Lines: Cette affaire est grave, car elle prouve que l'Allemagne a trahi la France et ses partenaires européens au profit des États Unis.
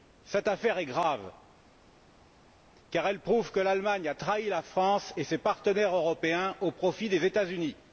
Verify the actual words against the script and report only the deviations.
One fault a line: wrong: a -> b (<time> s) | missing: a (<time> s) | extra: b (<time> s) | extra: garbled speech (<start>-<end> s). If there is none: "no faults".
no faults